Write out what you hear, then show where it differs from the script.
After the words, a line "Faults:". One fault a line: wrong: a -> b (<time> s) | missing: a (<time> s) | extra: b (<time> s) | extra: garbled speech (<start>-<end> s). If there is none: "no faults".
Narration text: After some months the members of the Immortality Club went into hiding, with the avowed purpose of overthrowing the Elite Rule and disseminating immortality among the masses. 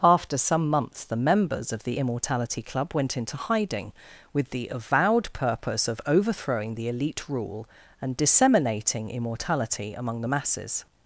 After some months the members of the Immortality Club went into hiding, with the avowed purpose of overthrowing the Elite Rule and disseminating immortality among the masses.
Faults:
no faults